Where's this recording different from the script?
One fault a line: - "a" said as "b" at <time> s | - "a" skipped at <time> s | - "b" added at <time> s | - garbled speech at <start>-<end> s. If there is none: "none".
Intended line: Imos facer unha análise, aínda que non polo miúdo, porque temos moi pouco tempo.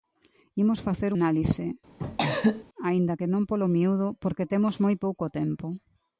- "unha" skipped at 1.1 s